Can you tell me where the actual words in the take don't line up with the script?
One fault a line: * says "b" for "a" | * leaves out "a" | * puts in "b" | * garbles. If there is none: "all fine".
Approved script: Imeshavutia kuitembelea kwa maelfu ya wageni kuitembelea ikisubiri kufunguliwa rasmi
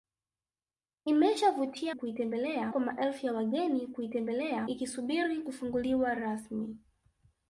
all fine